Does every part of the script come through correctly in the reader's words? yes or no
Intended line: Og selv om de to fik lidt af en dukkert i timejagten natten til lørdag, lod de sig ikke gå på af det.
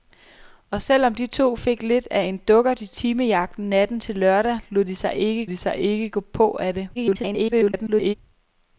no